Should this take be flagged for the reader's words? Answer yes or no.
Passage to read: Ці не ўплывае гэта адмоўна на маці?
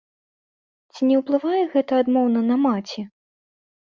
no